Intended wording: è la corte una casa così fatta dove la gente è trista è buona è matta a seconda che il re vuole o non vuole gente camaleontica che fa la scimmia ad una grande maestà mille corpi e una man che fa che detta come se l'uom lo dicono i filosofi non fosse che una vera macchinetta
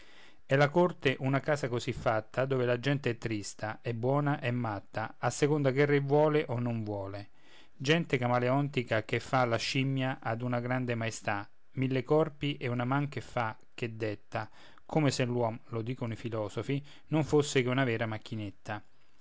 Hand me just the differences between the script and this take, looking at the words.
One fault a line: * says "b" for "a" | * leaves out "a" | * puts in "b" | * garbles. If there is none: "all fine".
all fine